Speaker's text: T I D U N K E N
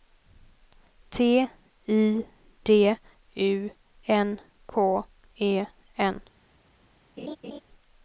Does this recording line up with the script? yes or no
yes